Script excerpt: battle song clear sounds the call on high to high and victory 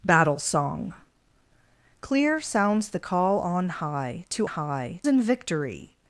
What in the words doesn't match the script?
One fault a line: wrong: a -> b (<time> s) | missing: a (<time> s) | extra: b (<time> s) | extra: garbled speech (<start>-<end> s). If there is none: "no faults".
no faults